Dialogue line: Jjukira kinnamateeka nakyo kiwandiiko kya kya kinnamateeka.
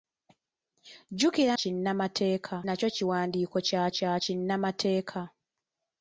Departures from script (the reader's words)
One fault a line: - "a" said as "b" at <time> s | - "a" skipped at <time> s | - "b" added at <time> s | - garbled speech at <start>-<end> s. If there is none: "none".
none